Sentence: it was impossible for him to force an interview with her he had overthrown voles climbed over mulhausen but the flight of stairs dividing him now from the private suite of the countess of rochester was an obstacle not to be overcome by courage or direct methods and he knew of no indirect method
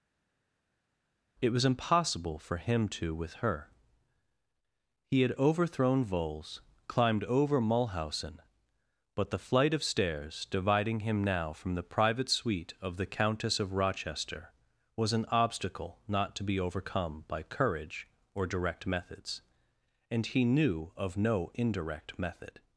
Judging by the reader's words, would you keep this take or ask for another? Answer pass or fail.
fail